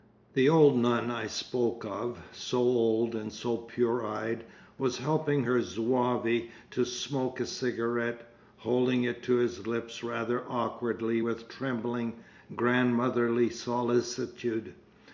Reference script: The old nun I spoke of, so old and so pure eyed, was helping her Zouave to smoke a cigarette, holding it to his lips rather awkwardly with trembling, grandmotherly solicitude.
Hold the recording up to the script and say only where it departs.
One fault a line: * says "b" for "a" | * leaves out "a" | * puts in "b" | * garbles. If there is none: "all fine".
all fine